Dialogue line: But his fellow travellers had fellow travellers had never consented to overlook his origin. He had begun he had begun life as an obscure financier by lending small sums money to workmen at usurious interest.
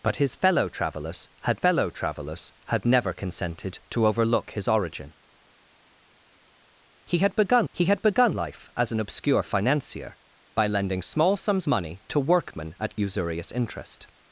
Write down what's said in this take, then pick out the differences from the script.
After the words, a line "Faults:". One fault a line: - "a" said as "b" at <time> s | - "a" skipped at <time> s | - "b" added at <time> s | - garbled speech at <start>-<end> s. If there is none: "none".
But his fellow travellers had fellow travellers had never consented to overlook his origin. He had begun he had begun life as an obscure financier by lending small sums money to workmen at usurious interest.
Faults:
none